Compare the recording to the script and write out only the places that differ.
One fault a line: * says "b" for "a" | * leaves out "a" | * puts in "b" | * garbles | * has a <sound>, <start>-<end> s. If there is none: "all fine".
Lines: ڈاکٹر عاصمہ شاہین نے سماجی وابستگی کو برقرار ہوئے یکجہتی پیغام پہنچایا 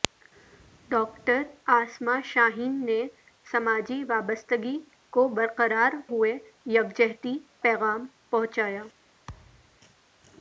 * has a thud, 9.3-9.8 s